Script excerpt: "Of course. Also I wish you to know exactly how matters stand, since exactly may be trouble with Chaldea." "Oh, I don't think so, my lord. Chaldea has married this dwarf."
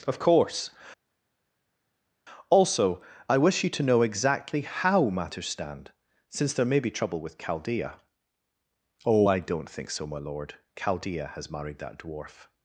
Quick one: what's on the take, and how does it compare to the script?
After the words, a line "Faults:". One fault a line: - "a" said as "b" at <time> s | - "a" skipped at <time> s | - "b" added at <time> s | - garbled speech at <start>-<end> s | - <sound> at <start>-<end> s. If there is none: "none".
"Of course. Also I wish you to know exactly how matters stand, since there may be trouble with Chaldea." "Oh, I don't think so, my lord. Chaldea has married that dwarf."
Faults:
- "exactly" said as "there" at 6.5 s
- "this" said as "that" at 11.8 s